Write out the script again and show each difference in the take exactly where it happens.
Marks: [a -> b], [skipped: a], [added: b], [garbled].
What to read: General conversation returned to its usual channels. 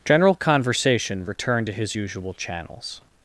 General conversation returned to [its -> his] usual channels.